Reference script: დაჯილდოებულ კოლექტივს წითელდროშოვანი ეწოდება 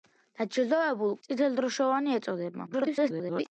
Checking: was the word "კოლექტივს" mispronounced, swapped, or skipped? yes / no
yes